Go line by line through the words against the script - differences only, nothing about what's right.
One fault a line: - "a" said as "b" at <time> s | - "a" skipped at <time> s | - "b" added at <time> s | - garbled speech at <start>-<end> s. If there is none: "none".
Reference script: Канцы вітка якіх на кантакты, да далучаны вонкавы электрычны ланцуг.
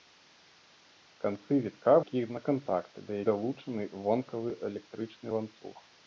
none